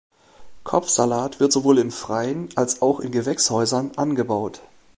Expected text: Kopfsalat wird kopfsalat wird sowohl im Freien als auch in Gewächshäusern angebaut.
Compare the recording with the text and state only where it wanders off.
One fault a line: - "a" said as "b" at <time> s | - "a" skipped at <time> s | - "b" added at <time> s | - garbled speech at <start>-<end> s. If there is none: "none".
- "kopfsalat wird" skipped at 1.5 s